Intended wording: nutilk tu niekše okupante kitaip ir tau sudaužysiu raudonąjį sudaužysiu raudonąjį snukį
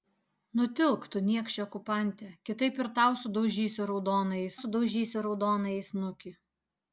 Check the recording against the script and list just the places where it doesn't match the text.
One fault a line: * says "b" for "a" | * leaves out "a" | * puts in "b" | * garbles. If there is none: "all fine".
all fine